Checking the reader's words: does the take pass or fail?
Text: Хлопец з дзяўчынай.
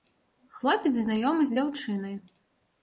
fail